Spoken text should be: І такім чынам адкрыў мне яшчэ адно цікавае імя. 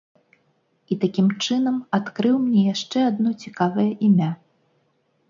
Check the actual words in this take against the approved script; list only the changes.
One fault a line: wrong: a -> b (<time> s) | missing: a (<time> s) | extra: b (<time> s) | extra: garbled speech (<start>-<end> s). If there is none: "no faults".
no faults